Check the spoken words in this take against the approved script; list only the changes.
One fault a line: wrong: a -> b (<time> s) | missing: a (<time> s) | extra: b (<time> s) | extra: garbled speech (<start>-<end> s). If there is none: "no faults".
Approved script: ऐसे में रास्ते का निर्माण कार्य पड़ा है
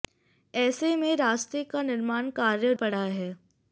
no faults